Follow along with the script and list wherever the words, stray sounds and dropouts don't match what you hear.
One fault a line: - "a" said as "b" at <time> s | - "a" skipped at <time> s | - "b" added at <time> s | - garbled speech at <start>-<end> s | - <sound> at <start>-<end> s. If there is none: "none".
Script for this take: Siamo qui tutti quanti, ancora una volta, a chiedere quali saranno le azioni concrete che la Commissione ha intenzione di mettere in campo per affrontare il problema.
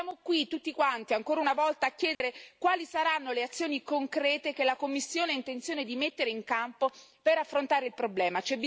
- dropout at 2.1-2.2 s